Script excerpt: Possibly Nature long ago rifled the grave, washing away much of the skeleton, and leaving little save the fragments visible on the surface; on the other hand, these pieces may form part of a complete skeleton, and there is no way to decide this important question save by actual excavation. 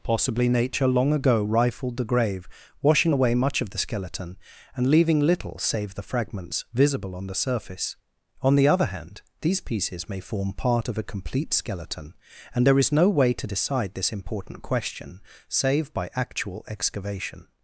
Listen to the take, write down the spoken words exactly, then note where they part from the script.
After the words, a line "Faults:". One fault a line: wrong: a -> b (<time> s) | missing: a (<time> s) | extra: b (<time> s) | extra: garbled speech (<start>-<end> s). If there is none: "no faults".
Possibly Nature long ago rifled the grave, washing away much of the skeleton, and leaving little save the fragments visible on the surface; on the other hand, these pieces may form part of a complete skeleton, and there is no way to decide this important question save by actual excavation.
Faults:
no faults